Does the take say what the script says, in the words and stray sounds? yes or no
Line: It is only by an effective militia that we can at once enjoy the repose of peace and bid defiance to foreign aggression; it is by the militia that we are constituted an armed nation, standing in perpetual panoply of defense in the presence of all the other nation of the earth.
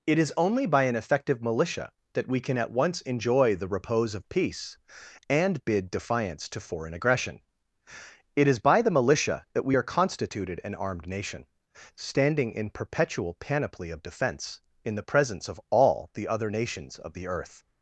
no